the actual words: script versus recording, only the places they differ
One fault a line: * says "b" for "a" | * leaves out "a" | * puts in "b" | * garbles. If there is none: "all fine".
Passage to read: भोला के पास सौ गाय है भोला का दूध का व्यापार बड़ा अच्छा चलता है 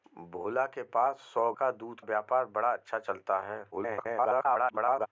* leaves out "गाय है भोला"
* leaves out "का"
* garbles